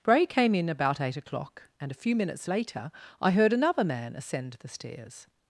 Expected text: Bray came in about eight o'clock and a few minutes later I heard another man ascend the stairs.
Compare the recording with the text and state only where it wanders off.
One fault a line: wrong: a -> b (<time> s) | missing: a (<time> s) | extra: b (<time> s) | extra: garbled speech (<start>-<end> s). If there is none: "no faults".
no faults